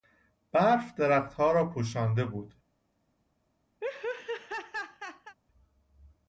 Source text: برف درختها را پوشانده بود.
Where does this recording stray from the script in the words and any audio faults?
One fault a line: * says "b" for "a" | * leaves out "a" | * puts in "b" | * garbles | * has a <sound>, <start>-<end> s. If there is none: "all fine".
* has a laugh, 3.8-5.4 s